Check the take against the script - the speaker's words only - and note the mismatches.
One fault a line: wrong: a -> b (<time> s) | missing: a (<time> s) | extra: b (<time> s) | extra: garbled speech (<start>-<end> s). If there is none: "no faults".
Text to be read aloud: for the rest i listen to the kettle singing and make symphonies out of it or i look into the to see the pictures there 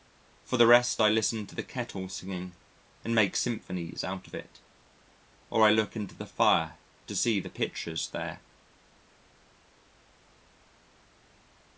extra: fire (6.3 s)